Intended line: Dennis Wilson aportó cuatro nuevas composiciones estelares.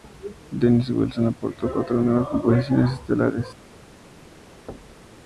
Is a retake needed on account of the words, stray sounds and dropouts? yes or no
yes